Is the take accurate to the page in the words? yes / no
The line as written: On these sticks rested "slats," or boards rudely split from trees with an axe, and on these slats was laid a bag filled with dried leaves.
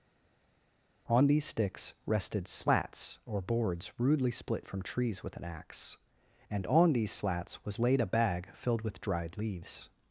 yes